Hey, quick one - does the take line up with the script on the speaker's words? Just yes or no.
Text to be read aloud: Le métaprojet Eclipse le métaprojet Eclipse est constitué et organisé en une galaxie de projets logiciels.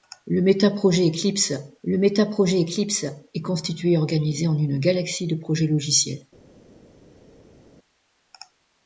yes